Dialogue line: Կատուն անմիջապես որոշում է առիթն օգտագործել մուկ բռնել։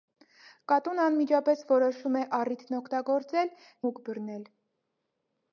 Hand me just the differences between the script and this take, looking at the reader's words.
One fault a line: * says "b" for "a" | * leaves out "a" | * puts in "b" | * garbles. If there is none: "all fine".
all fine